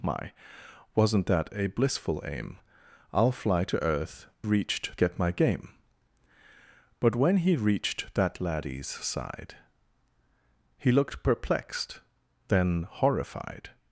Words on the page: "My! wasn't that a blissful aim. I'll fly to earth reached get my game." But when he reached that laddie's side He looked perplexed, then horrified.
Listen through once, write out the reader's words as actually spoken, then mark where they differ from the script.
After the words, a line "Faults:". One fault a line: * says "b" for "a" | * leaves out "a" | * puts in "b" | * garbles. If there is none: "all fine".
"My! wasn't that a blissful aim. I'll fly to earth reached get my game." But when he reached that laddie's side He looked perplexed, then horrified.
Faults:
all fine